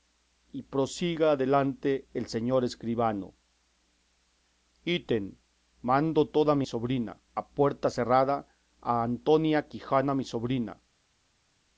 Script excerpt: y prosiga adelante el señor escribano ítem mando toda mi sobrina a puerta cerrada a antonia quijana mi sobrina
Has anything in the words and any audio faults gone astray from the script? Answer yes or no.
no